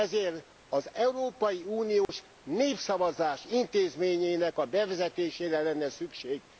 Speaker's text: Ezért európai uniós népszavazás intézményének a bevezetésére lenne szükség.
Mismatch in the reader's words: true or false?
true